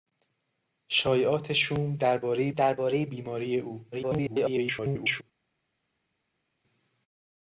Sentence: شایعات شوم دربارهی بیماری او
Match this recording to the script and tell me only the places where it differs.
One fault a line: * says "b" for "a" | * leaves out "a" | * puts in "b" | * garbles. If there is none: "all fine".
* puts in "دربارهی"
* garbles